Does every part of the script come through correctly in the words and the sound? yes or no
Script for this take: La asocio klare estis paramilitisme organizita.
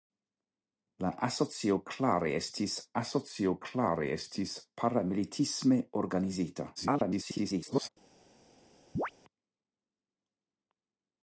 no